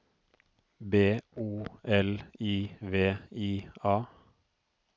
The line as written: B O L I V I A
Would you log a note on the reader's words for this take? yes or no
no